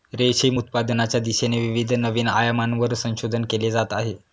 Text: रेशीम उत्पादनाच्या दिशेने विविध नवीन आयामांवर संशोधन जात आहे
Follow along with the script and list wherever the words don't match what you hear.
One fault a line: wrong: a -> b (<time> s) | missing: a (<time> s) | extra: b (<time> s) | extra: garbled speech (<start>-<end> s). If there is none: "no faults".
extra: केले (3.5 s)